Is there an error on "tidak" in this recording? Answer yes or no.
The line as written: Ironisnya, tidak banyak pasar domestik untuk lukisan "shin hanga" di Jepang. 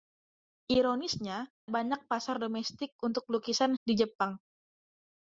yes